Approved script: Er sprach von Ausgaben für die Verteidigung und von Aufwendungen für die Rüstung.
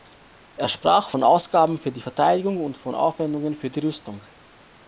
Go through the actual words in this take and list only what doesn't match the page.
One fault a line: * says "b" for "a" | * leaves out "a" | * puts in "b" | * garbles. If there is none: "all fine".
all fine